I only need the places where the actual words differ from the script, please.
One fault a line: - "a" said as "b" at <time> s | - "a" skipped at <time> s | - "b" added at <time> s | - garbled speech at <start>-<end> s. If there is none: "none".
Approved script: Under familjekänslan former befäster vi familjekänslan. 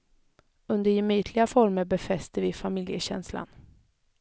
- "familjekänslan" said as "gemytliga" at 0.9 s